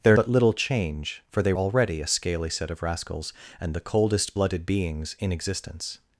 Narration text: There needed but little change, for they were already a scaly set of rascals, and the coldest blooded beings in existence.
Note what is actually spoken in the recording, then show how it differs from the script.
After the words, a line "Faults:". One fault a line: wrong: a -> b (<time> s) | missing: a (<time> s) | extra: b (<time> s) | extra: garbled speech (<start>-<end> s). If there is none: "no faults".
There but little change, for they already a scaly set of rascals, and the coldest blooded beings in existence.
Faults:
missing: needed (0.2 s)
missing: were (1.5 s)